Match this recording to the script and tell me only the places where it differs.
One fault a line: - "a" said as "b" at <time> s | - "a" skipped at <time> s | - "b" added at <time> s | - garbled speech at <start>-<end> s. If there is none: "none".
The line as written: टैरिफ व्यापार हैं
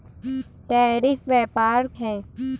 none